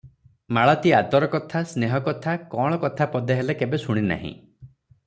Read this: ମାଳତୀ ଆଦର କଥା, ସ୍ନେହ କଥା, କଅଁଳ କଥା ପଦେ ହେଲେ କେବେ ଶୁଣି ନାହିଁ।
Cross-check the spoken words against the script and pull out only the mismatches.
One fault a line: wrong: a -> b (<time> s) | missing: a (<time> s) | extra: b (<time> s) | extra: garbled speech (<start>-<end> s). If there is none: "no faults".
no faults